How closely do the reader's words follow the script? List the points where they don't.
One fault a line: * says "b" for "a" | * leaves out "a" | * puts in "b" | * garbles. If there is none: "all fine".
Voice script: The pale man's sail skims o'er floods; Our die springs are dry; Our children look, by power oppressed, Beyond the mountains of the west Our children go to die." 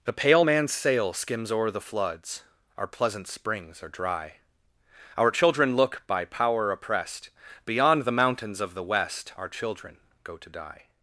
* puts in "the"
* says "pleasant" for "die"